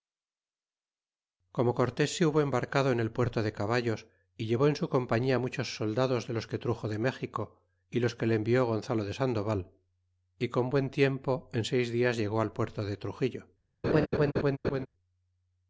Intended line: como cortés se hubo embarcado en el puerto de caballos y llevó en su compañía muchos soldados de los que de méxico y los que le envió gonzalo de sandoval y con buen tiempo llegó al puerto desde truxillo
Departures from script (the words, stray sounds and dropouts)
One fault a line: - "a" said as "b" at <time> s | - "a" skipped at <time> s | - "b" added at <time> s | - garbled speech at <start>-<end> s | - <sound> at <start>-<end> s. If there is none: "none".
- "truxo" added at 6.6 s
- "en seis dias" added at 11.5 s
- "desde" said as "de" at 12.8 s
- laugh at 13.8-14.9 s